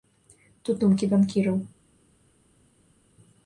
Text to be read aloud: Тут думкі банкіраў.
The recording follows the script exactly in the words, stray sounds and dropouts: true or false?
true